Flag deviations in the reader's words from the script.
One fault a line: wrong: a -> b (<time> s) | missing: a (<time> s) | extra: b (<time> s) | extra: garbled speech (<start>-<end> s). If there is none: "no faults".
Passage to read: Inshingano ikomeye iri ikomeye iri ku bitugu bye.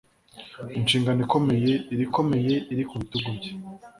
no faults